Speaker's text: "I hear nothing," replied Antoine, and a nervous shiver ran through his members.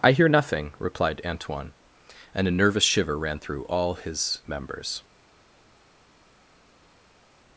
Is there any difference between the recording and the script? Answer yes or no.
yes